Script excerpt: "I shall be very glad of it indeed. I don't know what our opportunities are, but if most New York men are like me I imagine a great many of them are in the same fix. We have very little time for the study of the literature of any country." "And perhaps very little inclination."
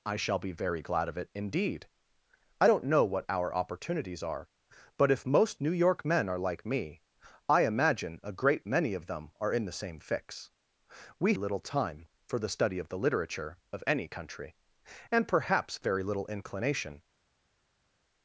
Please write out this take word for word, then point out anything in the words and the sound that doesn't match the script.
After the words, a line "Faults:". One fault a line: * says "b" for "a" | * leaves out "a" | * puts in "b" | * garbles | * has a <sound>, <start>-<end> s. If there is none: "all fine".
"I shall be very glad of it indeed. I don't know what our opportunities are, but if most New York men are like me I imagine a great many of them are in the same fix. We little time for the study of the literature of any country." "And perhaps very little inclination."
Faults:
* leaves out "have very"